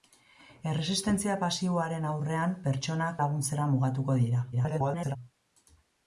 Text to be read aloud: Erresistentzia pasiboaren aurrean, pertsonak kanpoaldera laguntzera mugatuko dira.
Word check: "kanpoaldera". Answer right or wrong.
wrong